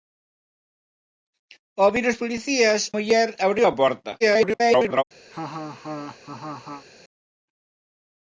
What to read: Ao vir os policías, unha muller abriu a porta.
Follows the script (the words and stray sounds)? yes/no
no